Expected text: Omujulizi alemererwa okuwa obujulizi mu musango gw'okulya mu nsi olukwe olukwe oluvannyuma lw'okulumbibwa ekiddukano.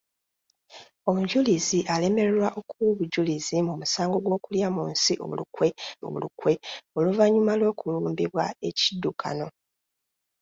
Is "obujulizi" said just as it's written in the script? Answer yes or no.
yes